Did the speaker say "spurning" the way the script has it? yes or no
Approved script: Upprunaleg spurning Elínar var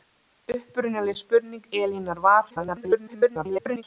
yes